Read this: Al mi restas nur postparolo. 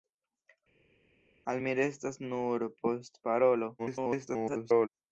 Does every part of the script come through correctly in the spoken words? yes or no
no